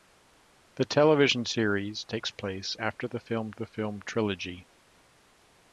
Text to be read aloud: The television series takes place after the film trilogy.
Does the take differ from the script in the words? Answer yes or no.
yes